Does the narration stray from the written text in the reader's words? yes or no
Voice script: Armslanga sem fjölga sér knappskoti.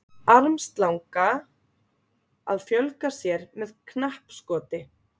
yes